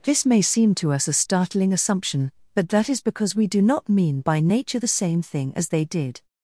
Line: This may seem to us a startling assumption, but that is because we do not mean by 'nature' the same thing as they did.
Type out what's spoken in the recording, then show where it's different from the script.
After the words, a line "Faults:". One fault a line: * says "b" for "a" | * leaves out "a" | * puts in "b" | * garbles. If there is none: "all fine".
This may seem to us a startling assumption, but that is because we do not mean by 'nature' the same thing as they did.
Faults:
all fine